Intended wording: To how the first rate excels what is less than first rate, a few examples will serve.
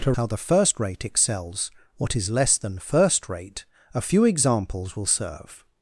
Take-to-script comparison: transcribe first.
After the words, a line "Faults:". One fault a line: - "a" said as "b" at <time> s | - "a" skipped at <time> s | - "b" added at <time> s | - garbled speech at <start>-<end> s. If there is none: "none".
To how the first rate excels what is less than first rate, a few examples will serve.
Faults:
none